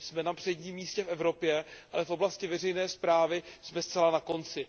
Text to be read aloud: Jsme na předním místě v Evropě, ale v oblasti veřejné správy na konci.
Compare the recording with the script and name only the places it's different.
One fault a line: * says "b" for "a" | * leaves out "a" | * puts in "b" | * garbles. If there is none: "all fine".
* puts in "jsme zcela"